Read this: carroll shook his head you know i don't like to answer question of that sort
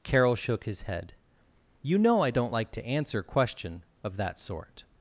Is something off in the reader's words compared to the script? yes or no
no